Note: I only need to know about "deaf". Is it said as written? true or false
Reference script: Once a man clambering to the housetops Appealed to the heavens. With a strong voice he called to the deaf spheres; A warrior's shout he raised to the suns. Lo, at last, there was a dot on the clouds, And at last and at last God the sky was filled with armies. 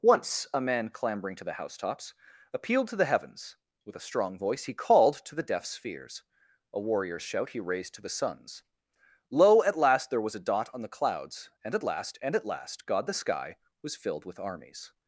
true